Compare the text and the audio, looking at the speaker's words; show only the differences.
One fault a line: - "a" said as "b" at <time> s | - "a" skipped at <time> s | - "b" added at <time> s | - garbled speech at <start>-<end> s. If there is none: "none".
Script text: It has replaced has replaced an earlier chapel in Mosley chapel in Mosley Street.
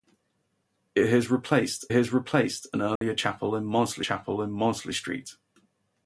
none